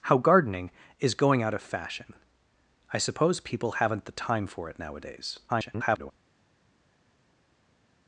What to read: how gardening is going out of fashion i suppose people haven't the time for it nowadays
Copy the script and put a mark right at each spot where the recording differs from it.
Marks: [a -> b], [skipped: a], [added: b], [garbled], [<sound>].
how gardening is going out of fashion i suppose people haven't the time for it nowadays [garbled]